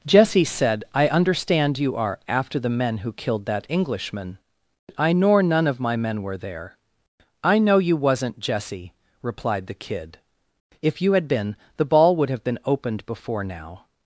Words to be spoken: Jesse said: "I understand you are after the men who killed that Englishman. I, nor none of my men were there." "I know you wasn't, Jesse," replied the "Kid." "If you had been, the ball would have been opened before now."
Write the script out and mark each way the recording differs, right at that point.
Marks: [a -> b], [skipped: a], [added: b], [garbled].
Jesse said: "I understand you are after the men who killed that Englishman. I, nor none of my men were there." "I know you wasn't, Jesse," replied the "Kid." "If you had been, the ball would have been opened before now."